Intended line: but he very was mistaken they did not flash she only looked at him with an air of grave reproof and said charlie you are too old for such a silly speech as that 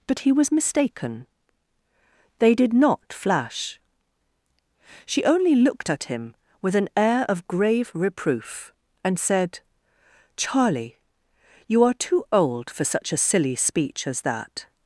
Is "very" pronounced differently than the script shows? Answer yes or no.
yes